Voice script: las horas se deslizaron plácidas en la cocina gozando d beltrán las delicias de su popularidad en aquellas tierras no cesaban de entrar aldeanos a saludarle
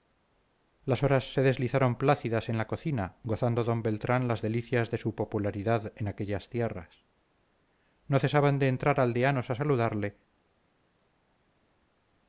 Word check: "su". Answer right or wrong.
right